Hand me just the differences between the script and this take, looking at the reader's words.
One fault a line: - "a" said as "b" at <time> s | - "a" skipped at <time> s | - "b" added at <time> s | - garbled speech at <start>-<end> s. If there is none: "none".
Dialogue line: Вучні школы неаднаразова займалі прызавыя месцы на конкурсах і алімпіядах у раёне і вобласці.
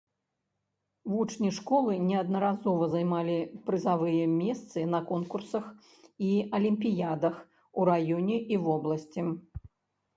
none